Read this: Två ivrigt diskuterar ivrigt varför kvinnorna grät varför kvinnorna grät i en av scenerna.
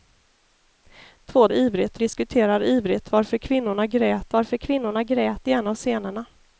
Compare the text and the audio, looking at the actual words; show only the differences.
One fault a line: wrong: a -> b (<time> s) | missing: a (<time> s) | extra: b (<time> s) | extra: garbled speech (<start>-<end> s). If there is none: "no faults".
no faults